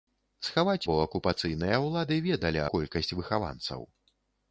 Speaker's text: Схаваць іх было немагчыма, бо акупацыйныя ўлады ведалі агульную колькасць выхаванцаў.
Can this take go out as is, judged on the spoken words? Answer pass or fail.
fail